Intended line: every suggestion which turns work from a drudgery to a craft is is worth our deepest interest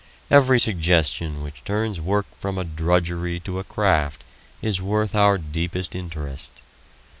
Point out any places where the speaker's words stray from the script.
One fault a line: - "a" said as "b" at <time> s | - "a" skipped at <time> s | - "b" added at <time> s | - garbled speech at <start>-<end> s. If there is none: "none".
- "is" skipped at 4.8 s